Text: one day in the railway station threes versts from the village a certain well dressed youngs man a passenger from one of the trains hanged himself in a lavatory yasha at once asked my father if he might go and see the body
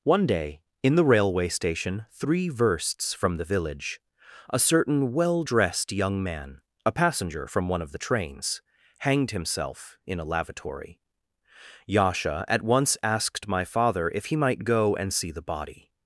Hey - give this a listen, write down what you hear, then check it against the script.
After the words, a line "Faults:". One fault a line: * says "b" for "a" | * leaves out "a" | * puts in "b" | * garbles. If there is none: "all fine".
one day in the railway station three versts from the village a certain well dressed young man a passenger from one of the trains hanged himself in a lavatory yasha at once asked my father if he might go and see the body
Faults:
* says "three" for "threes"
* says "young" for "youngs"